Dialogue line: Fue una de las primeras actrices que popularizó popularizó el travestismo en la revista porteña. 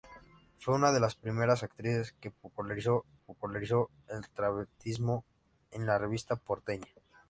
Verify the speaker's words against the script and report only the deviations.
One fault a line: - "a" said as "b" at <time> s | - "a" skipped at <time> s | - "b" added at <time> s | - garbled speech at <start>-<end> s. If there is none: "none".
none